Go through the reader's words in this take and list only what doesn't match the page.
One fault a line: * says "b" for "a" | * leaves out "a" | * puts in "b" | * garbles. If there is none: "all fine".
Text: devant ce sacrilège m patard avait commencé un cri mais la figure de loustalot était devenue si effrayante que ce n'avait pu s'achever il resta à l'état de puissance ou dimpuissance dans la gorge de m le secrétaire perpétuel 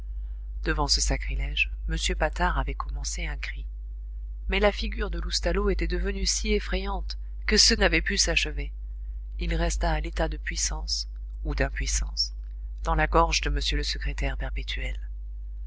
all fine